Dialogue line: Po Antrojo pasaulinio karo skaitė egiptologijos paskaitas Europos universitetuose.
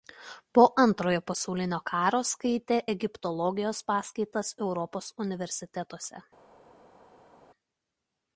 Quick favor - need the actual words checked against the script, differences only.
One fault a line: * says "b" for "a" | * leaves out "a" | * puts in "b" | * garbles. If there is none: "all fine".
all fine